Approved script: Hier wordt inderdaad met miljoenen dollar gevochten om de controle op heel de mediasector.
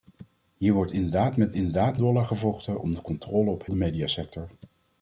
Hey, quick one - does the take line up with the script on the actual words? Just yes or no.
no